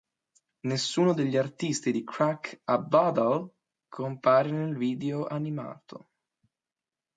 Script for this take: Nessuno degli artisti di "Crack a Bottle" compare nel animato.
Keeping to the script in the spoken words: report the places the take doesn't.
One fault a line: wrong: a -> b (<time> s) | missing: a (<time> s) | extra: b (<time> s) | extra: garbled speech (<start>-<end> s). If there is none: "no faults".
extra: video (4.8 s)